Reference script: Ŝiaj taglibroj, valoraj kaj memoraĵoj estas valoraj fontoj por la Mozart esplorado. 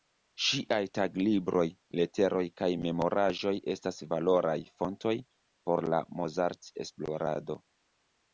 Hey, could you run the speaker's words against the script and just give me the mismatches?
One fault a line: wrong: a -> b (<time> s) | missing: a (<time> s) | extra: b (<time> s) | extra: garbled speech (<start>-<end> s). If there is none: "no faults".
wrong: valoraj -> leteroj (2.0 s)